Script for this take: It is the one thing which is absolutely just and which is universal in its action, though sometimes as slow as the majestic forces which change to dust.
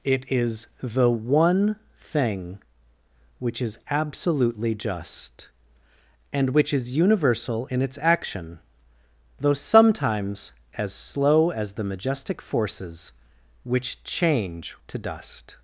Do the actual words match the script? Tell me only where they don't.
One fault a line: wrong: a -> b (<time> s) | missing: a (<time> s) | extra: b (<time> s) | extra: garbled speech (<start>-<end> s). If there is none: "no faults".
no faults